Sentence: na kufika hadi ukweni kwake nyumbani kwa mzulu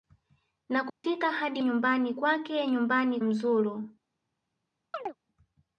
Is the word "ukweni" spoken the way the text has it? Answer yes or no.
no